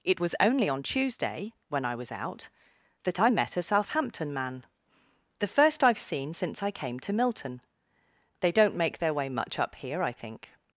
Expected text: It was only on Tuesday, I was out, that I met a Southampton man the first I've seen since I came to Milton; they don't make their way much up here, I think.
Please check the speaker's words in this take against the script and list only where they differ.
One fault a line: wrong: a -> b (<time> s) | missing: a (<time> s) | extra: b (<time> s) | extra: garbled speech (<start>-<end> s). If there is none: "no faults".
extra: when (1.7 s)